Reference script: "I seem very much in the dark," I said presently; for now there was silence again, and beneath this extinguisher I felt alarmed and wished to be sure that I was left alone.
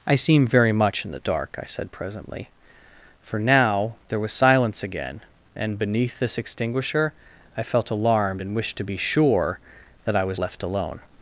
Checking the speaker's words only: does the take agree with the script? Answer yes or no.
yes